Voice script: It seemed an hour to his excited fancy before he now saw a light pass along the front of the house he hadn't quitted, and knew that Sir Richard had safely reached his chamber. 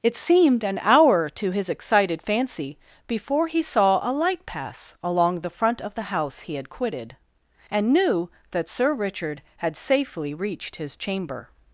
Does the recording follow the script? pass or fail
fail